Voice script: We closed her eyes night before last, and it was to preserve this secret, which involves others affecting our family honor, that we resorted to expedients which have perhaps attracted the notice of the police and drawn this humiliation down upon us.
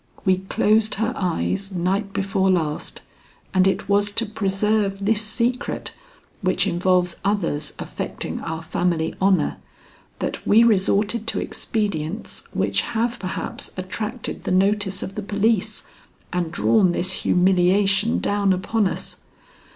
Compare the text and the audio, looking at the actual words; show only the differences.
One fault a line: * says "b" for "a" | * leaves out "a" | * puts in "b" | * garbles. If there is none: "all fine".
all fine